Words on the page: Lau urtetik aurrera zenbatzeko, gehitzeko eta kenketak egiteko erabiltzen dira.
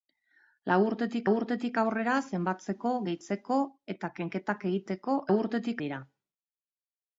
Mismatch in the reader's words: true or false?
true